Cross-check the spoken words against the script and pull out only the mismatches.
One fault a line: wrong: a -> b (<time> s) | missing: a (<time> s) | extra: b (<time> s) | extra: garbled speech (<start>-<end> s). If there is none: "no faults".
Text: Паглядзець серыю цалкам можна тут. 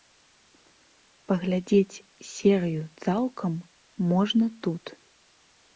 no faults